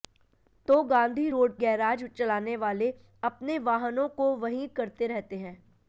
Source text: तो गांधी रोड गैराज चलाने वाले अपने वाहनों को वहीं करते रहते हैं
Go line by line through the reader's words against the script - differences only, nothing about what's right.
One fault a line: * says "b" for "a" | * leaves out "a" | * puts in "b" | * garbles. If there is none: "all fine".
all fine